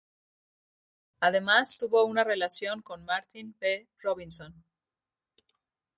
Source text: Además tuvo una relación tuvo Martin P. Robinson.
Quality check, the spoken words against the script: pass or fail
fail